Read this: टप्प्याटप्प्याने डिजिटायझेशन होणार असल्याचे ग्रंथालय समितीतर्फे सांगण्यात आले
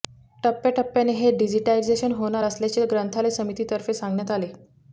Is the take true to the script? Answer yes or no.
no